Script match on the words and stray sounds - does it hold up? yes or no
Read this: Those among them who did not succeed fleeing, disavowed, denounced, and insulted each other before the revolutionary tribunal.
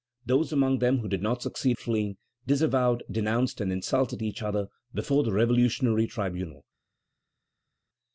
yes